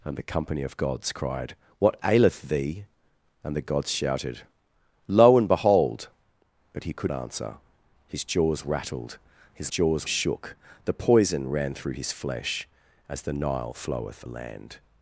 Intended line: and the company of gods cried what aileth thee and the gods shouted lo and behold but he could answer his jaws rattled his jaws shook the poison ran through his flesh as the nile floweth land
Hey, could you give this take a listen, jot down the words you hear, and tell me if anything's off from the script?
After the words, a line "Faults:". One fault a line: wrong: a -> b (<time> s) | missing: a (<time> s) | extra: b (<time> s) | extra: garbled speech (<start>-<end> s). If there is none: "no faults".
and the company of gods cried what aileth thee and the gods shouted lo and behold but he could answer his jaws rattled his jaws shook the poison ran through his flesh as the nile floweth land
Faults:
no faults